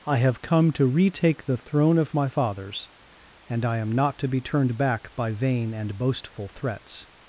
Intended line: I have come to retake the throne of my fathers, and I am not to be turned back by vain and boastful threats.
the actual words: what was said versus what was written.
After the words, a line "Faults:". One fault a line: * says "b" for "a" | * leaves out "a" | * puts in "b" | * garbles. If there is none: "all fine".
I have come to retake the throne of my fathers, and I am not to be turned back by vain and boastful threats.
Faults:
all fine